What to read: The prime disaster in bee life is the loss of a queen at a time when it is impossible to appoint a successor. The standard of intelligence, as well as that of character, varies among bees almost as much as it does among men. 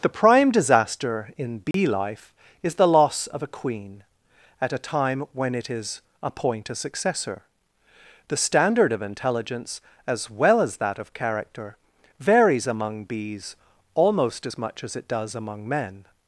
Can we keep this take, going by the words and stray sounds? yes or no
no